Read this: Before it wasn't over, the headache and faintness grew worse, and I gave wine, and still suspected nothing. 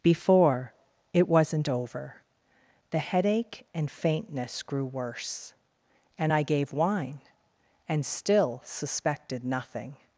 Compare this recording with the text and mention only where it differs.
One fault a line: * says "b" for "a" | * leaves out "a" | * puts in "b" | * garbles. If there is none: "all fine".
all fine